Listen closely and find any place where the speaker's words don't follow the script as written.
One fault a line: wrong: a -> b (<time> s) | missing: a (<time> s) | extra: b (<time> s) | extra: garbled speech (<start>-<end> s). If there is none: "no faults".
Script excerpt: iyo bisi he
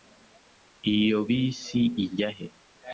extra: ijya (2.0 s)